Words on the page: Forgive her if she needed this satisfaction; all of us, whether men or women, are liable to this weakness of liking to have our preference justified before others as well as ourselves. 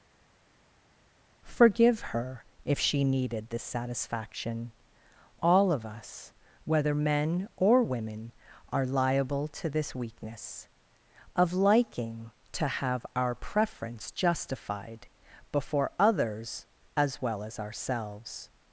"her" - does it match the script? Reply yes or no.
yes